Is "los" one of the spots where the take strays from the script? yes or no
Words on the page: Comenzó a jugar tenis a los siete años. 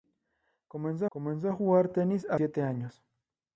yes